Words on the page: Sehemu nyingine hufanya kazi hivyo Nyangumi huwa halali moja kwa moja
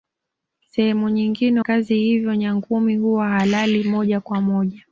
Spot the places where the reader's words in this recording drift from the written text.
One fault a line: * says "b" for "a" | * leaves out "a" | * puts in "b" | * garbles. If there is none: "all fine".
* leaves out "hufanya"